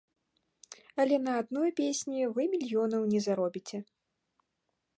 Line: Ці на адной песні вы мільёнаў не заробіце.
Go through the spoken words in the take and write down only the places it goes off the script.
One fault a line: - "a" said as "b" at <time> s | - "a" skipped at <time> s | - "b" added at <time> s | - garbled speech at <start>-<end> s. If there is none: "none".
- "Ці" said as "Але" at 1.0 s